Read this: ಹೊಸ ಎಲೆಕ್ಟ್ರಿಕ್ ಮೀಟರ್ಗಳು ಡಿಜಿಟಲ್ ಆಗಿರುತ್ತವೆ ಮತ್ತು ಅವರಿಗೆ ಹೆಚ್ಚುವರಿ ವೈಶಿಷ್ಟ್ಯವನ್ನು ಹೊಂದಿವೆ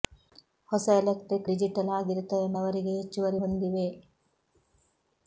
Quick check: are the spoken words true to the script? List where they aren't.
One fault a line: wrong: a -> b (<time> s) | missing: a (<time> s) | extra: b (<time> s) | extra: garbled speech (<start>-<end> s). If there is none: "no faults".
missing: ಮೀಟರ್ಗಳು (1.5 s)
missing: ಮತ್ತು (2.5 s)
missing: ವೈಶಿಷ್ಟ್ಯವನ್ನು (3.4 s)